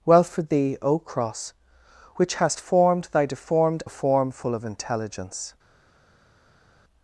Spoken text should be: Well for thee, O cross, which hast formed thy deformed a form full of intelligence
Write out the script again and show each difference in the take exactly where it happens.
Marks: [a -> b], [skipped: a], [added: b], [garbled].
Well for thee, O cross, which hast formed thy deformed a form full of intelligence